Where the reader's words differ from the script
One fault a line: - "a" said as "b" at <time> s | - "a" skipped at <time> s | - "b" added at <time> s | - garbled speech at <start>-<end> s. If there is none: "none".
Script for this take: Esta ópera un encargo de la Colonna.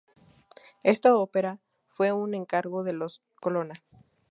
- "fue" added at 1.9 s
- "la" said as "los" at 2.9 s